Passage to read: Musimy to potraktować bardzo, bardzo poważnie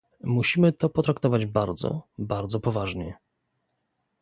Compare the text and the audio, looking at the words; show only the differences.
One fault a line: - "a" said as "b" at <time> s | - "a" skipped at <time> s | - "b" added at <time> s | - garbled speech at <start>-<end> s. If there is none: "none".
none